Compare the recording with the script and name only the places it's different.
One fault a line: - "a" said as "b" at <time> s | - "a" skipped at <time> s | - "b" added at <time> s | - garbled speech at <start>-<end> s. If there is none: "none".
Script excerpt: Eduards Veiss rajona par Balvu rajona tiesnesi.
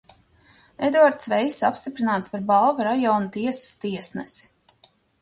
- "rajona" said as "apstiprināts" at 1.7 s
- "tiesas" added at 3.4 s